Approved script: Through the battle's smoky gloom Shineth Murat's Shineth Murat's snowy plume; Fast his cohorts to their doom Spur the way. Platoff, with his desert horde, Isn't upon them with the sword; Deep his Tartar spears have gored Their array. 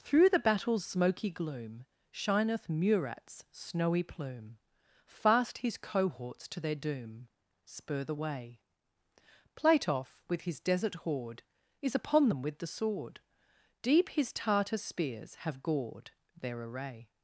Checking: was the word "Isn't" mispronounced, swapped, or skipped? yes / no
yes